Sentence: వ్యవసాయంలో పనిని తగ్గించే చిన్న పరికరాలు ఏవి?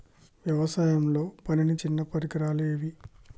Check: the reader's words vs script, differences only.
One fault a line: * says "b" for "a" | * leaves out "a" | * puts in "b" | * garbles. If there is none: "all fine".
* leaves out "తగ్గించే"